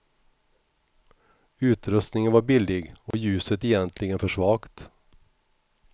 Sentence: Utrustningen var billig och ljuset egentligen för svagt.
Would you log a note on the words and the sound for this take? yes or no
yes